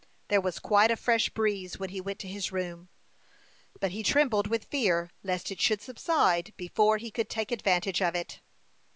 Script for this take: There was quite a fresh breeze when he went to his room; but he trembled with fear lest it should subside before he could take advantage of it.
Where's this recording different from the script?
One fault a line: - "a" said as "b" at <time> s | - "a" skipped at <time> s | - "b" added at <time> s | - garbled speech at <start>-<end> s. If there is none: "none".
none